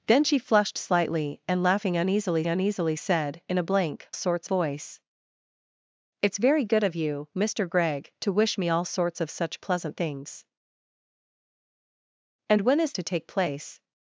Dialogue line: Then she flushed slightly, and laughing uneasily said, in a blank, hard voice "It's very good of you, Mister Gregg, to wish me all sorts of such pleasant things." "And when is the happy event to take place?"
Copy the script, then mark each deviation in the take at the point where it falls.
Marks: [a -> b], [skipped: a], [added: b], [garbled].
Then she flushed slightly, and laughing uneasily [added: uneasily] said, in a blank, [hard -> sorts] voice "It's very good of you, Mister Gregg, to wish me all sorts of such pleasant things." "And when is [skipped: the happy event] to take place?"